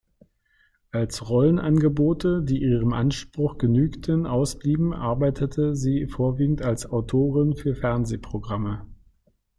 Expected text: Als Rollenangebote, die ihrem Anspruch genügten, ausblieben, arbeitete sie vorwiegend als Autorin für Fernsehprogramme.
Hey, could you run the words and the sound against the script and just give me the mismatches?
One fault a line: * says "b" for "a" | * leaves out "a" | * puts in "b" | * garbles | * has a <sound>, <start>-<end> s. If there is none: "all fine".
all fine